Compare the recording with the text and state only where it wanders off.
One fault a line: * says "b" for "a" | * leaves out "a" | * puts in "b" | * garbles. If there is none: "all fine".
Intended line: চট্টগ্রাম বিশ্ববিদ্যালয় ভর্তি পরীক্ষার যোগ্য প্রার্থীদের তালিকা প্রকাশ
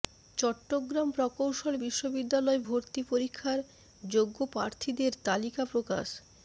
* puts in "প্রকৌশল"